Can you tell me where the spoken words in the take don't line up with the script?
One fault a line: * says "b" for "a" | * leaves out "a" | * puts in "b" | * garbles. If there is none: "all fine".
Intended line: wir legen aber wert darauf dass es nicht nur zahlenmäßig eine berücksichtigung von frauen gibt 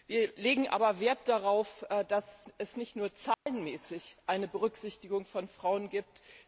all fine